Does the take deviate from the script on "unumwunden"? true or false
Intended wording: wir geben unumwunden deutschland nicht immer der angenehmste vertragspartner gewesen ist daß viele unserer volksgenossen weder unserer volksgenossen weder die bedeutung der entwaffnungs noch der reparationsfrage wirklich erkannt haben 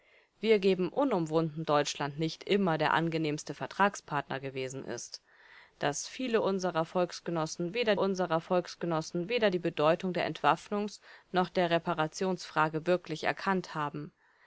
false